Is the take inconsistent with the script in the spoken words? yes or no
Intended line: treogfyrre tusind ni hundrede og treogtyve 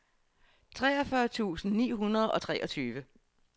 no